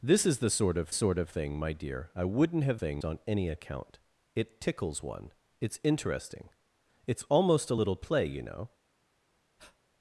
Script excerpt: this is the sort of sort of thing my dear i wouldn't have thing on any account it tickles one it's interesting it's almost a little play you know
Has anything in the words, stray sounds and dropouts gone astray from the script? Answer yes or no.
yes